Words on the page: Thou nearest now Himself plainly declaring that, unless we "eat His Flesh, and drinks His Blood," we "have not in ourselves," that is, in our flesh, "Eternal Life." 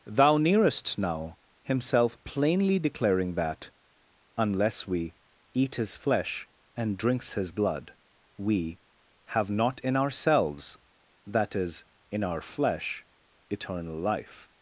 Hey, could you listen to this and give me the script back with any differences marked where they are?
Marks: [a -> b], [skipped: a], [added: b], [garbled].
Thou nearest now Himself plainly declaring that, unless we "eat His Flesh, and drinks His Blood," we "have not in ourselves," that is, in our flesh, "Eternal Life."